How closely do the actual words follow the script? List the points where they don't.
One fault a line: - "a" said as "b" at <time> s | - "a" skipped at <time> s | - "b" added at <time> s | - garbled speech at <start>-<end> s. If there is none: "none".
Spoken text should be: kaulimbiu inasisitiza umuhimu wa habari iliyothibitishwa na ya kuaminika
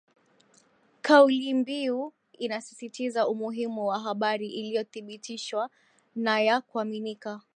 none